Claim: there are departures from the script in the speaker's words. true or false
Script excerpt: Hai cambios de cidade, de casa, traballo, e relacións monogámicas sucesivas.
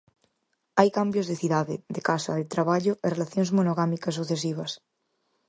true